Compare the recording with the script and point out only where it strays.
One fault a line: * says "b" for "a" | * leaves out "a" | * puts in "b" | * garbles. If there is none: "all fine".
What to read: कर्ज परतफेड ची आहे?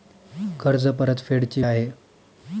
all fine